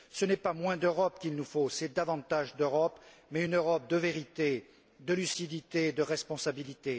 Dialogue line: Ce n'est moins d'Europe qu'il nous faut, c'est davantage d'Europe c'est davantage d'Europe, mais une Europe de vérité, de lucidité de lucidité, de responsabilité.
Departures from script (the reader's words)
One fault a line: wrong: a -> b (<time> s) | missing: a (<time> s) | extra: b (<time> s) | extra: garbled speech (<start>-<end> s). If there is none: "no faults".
extra: pas (0.4 s)
missing: c'est davantage d'Europe (3.0 s)
missing: lucidité de (6.0 s)